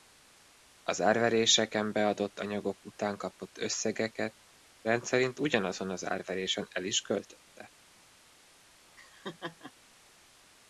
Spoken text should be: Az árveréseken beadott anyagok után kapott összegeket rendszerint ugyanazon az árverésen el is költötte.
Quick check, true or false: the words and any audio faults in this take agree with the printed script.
false